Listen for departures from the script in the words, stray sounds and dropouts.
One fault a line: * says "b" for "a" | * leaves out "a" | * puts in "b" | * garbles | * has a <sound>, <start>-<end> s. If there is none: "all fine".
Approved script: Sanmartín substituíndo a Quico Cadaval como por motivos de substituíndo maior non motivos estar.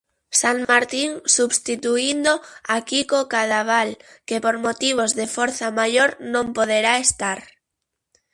* has a dropout, 0.6-0.7 s
* says "que" for "como"
* says "forza" for "substituíndo"
* says "poderá" for "motivos"